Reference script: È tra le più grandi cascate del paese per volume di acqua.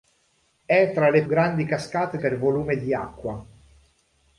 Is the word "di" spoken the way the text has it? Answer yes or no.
yes